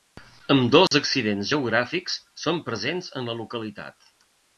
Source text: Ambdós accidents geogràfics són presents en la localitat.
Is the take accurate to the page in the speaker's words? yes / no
yes